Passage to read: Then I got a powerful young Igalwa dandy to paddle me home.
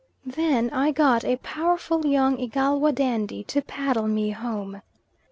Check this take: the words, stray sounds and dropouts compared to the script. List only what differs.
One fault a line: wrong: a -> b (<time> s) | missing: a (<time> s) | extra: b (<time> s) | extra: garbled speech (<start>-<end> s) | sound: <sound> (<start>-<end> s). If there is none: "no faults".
no faults